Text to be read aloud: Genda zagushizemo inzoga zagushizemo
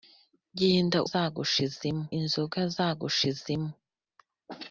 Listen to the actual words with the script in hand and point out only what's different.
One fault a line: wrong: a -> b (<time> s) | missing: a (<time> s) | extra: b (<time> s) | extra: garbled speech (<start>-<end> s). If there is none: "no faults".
no faults